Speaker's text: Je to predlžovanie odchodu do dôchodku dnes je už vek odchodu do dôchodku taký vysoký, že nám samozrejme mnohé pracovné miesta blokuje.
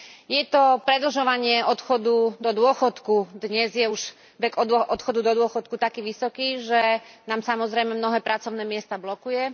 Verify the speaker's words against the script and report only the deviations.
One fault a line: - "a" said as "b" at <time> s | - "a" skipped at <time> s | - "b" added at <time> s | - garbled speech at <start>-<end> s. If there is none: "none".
none